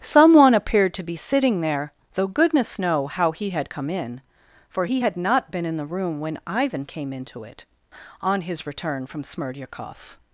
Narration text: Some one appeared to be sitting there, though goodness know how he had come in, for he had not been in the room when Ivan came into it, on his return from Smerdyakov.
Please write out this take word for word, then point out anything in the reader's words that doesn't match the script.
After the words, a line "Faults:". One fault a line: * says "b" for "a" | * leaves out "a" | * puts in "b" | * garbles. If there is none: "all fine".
Some one appeared to be sitting there, though goodness know how he had come in, for he had not been in the room when Ivan came into it, on his return from Smerdyakov.
Faults:
all fine